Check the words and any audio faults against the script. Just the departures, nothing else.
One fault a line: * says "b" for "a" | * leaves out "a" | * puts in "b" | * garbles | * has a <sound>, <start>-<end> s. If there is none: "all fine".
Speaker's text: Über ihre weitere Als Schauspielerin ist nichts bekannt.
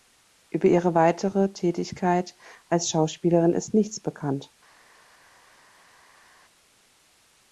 * puts in "Tätigkeit"